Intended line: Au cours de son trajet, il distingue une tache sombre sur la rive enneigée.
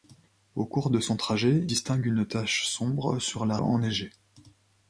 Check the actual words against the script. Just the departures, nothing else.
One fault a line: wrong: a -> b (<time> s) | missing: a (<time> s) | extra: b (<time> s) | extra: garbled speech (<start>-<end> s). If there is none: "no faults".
missing: il (1.7 s)
missing: rive (3.6 s)